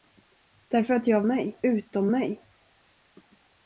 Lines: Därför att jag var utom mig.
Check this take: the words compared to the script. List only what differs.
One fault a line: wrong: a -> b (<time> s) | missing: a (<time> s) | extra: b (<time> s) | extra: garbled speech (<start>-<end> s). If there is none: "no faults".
wrong: var -> mig (1.3 s)